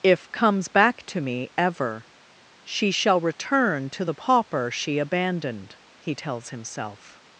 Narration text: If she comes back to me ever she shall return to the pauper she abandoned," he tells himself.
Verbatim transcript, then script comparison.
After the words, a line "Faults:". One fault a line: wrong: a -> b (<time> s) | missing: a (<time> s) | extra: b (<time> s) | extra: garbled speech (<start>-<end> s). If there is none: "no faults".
If comes back to me ever she shall return to the pauper she abandoned," he tells himself.
Faults:
missing: she (0.3 s)